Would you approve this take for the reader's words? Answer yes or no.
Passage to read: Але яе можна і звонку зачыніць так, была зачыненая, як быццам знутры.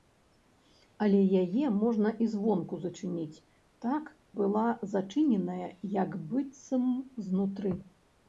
yes